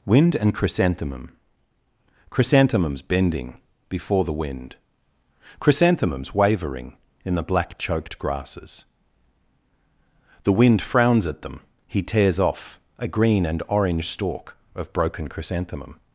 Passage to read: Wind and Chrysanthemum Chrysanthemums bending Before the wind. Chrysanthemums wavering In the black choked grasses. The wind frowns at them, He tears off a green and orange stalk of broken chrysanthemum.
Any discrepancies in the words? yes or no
no